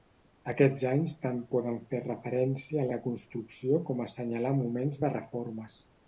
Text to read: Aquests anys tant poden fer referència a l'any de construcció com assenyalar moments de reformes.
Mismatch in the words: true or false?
true